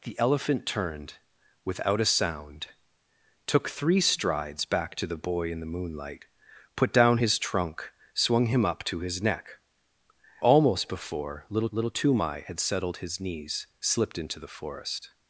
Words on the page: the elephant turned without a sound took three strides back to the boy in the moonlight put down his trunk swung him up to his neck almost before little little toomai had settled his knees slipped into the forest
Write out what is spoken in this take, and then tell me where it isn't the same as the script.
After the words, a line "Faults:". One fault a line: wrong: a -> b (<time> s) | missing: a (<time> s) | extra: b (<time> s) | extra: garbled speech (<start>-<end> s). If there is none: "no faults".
the elephant turned without a sound took three strides back to the boy in the moonlight put down his trunk swung him up to his neck almost before little little toomai had settled his knees slipped into the forest
Faults:
no faults